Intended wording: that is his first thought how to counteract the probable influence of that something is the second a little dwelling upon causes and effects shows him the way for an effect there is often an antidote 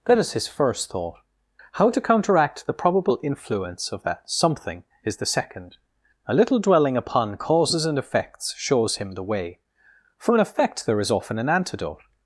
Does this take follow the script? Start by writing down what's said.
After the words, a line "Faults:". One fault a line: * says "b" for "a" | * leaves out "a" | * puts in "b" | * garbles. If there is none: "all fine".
that is his first thought how to counteract the probable influence of that something is the second a little dwelling upon causes and effects shows him the way for an effect there is often an antidote
Faults:
all fine